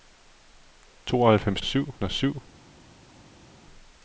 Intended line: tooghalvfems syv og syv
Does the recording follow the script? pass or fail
pass